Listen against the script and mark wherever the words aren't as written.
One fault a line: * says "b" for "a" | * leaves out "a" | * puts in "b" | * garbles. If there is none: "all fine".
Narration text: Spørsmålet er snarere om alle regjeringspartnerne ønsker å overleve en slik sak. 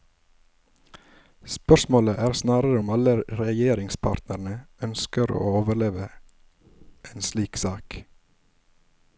all fine